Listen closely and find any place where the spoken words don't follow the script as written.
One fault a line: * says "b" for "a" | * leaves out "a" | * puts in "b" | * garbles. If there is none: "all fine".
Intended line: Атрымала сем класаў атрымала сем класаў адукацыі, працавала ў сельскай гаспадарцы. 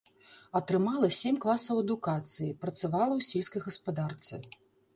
* leaves out "атрымала сем класаў"